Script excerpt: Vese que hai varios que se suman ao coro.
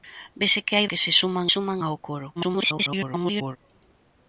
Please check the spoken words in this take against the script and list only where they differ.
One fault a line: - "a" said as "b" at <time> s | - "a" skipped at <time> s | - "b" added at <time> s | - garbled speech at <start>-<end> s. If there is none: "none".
- "varios" skipped at 0.9 s
- "suman" added at 1.5 s
- garbled speech at 2.4-3.6 s